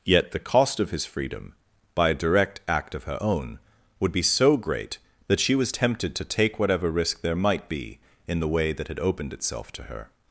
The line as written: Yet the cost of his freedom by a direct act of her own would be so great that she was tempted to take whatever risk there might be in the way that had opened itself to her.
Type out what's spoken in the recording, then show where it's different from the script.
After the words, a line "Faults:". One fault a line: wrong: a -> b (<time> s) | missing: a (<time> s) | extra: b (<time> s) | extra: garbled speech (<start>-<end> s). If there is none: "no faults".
Yet the cost of his freedom by a direct act of her own would be so great that she was tempted to take whatever risk there might be in the way that had opened itself to her.
Faults:
no faults